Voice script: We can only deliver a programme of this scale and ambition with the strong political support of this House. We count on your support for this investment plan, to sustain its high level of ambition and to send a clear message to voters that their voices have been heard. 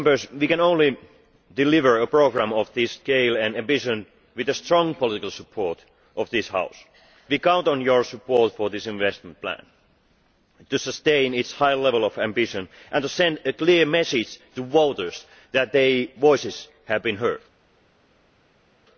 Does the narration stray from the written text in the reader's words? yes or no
no